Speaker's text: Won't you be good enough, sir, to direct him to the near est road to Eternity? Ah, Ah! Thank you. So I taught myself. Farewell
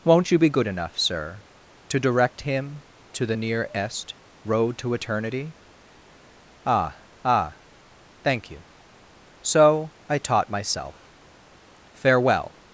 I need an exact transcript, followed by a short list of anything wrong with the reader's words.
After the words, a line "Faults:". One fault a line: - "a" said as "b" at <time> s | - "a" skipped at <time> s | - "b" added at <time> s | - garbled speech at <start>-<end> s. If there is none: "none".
Won't you be good enough, sir, to direct him to the near est road to Eternity? Ah, Ah! Thank you. So I taught myself. Farewell
Faults:
none